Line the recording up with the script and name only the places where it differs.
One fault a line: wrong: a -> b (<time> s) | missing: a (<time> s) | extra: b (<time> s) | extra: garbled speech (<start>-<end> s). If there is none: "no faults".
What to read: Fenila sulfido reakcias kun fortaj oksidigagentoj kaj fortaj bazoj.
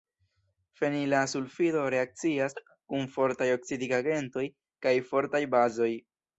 no faults